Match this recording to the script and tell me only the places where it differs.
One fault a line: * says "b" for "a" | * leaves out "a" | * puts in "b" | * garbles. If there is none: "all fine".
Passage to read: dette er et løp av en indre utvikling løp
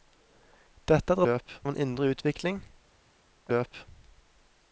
all fine